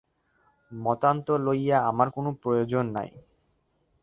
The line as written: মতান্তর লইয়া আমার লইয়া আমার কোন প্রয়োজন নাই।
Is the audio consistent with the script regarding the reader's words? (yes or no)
no